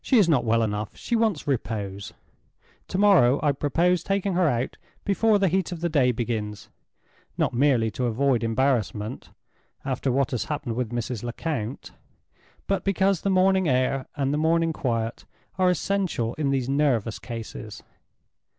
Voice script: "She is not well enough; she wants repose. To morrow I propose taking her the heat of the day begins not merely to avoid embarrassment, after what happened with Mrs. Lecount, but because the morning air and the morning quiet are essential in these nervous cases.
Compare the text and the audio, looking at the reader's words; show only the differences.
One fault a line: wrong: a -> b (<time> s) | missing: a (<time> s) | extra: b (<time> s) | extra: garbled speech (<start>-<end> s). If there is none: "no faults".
extra: out before (4.5 s)
extra: has (10.3 s)